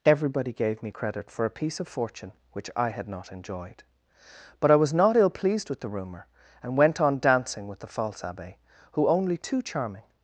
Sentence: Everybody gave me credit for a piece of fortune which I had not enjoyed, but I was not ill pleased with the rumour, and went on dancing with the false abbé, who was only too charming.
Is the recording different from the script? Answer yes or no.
yes